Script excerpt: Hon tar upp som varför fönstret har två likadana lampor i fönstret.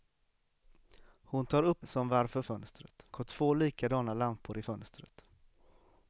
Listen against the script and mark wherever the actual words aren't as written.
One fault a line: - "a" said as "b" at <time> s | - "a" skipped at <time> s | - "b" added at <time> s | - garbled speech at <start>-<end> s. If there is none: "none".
none